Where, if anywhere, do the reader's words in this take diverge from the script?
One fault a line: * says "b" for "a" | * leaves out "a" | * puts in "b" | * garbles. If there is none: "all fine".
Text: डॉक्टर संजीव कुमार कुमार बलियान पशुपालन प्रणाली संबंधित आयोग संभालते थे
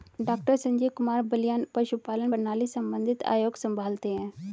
* leaves out "कुमार"
* says "हैं" for "थे"